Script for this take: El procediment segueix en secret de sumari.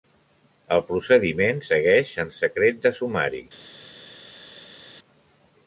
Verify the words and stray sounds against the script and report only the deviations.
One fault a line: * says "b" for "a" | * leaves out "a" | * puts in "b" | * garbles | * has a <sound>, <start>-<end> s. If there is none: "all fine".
all fine